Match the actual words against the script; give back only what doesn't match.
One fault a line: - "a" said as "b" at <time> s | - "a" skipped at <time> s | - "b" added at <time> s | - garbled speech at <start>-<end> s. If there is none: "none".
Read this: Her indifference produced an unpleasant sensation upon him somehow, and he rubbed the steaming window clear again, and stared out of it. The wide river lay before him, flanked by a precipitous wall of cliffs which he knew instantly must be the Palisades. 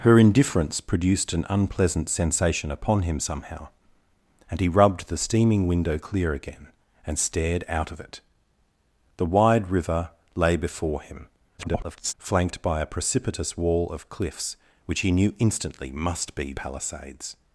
- garbled speech at 11.6-12.1 s
- "the" skipped at 16.5 s